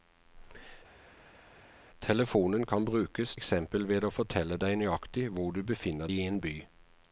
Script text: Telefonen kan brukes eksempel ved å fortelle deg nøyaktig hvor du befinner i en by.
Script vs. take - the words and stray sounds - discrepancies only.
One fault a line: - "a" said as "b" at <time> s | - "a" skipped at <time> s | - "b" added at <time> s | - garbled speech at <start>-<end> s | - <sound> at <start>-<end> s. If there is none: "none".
none